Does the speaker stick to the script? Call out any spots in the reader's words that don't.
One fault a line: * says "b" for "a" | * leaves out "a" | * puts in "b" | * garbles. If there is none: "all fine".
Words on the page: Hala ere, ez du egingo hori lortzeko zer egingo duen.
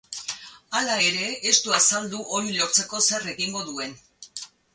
* says "azaldu" for "egingo"